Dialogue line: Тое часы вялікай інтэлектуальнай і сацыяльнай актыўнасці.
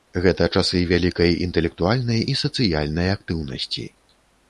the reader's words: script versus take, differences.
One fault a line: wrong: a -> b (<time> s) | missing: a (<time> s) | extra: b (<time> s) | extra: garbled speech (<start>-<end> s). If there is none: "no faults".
wrong: Тое -> Гэта (0.2 s)